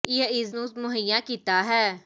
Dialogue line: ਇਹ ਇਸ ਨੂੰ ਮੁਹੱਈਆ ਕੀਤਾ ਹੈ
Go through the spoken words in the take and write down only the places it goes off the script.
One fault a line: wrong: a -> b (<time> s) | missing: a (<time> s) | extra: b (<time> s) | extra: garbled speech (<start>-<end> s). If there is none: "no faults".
no faults